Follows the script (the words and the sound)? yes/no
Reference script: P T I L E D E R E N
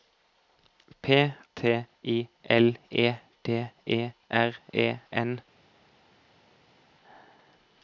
yes